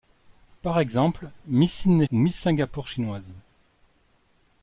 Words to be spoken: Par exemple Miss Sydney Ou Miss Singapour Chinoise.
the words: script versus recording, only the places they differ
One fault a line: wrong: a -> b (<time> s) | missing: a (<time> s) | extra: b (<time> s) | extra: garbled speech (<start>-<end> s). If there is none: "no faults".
no faults